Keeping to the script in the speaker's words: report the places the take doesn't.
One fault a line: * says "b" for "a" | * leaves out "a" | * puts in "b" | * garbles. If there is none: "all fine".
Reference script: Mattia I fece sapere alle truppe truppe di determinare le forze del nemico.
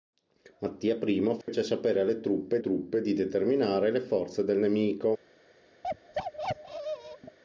all fine